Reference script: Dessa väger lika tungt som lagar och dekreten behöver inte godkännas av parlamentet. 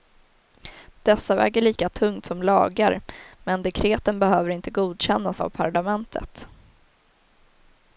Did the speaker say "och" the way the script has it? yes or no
no